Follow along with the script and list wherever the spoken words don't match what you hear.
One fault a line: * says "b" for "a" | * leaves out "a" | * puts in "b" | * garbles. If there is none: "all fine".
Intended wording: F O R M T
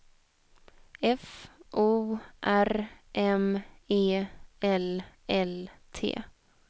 * puts in "E L L"